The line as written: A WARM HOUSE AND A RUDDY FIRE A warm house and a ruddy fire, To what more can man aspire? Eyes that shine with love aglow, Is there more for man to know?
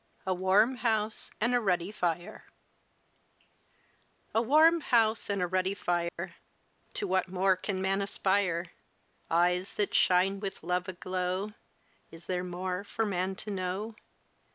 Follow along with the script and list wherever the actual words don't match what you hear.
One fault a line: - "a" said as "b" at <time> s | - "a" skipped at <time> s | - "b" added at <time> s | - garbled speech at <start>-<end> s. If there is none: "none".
none